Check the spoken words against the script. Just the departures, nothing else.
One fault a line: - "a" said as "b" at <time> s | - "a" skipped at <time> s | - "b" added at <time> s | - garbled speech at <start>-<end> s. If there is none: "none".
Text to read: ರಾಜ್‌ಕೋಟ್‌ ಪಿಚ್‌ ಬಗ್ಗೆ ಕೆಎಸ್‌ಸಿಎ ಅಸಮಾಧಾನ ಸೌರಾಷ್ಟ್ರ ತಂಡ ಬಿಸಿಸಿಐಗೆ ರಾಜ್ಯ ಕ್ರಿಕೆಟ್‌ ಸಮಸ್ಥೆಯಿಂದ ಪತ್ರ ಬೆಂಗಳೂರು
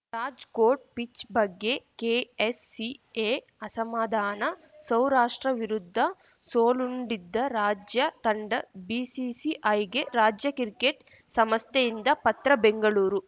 - "ವಿರುದ್ಧ ಸೋಲುಂಡಿದ್ದ ರಾಜ್ಯ" added at 5.6 s